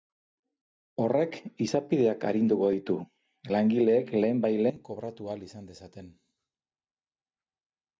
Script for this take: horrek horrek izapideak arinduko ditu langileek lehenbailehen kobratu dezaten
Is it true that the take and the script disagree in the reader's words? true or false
true